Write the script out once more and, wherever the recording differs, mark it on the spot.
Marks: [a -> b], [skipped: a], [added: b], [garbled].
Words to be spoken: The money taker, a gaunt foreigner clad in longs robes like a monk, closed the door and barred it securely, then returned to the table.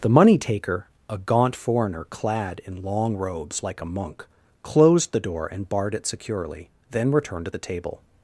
The money taker, a gaunt foreigner clad in [longs -> long] robes like a monk, closed the door and barred it securely, then returned to the table.